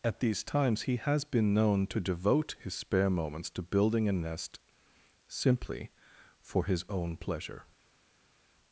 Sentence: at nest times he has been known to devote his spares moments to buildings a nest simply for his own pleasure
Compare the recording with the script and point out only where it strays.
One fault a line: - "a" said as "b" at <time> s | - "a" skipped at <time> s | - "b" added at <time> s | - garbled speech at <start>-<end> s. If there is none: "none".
- "nest" said as "these" at 0.2 s
- "spares" said as "spare" at 2.7 s
- "buildings" said as "building" at 3.6 s